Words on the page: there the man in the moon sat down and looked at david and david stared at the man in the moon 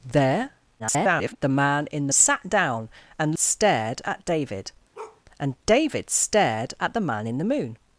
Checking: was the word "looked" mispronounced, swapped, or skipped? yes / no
yes